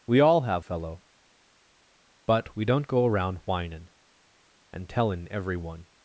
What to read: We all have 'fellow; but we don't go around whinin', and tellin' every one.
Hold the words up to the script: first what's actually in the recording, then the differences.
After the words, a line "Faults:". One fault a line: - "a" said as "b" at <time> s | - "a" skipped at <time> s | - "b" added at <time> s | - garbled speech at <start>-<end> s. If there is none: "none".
We all have 'fellow; but we don't go around whinin', and tellin' every one.
Faults:
none